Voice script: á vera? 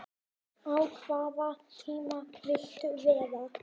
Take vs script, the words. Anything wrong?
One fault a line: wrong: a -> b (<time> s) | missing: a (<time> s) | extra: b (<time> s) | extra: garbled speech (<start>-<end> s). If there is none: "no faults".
extra: hvaða tíma viltu (0.9 s)